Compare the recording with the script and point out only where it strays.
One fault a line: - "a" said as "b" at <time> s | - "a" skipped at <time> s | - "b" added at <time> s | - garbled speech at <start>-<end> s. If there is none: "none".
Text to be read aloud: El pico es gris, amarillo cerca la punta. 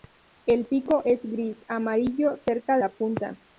none